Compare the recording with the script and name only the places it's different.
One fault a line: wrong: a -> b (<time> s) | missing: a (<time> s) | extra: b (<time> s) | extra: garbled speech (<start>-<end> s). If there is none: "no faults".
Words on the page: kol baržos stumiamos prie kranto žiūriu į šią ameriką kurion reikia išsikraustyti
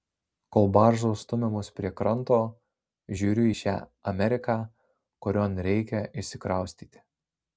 no faults